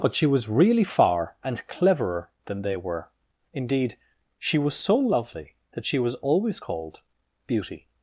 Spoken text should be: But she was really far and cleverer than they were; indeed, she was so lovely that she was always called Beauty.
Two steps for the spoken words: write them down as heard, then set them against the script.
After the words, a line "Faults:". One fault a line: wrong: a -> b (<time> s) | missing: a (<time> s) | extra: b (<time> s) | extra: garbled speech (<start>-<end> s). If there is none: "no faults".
But she was really far and cleverer than they were; indeed, she was so lovely that she was always called Beauty.
Faults:
no faults